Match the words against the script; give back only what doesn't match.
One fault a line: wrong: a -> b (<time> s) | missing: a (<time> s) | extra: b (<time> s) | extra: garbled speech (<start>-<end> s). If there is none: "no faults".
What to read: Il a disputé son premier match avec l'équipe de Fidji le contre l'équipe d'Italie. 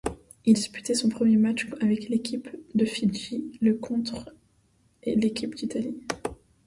missing: a (0.6 s)